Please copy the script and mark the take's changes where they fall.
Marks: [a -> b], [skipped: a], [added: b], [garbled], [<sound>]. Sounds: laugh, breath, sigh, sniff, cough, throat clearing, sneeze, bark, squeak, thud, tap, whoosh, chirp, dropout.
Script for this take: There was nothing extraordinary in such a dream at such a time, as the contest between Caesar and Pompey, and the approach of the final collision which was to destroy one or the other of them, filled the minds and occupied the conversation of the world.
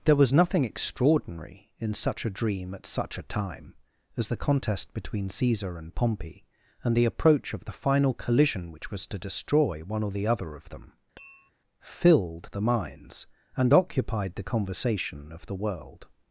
There was nothing extraordinary in such a dream at such a time, as the contest between Caesar and Pompey, and the approach of the final collision which was to destroy one or the other of them, [tap] filled the minds and occupied the conversation of the world.